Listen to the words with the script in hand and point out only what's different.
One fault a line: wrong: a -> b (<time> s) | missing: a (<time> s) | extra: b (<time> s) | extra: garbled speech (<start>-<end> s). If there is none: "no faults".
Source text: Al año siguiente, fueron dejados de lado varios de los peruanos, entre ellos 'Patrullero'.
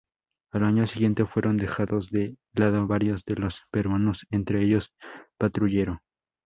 no faults